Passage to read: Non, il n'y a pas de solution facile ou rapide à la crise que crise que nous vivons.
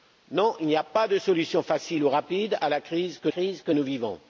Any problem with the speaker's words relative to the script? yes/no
no